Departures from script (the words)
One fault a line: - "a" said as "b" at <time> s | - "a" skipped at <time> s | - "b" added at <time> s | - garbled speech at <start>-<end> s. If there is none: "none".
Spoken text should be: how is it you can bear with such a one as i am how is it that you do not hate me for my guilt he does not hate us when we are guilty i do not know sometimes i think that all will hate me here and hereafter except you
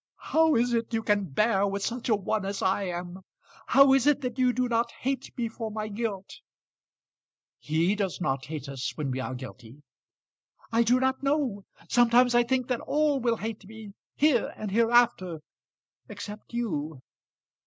none